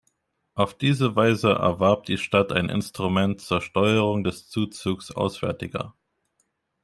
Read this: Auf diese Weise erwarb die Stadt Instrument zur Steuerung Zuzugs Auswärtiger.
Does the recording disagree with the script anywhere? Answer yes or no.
yes